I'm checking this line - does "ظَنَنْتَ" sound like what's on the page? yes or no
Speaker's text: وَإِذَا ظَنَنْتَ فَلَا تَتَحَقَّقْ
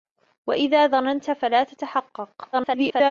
yes